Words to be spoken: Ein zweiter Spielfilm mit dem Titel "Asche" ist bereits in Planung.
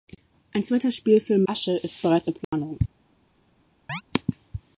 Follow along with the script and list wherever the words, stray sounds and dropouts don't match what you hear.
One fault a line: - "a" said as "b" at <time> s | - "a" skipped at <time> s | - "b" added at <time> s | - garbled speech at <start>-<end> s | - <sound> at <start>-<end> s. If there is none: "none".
- "mit dem Titel" skipped at 1.4 s
- dropout at 2.4-2.5 s
- chirp at 3.9-4.0 s